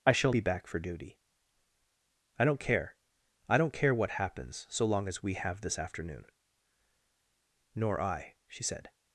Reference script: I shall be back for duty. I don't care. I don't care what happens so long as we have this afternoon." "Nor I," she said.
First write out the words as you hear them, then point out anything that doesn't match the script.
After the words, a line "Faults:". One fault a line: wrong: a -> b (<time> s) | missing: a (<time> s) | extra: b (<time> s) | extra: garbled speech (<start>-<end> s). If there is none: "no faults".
I shall be back for duty. I don't care. I don't care what happens so long as we have this afternoon." "Nor I," she said.
Faults:
no faults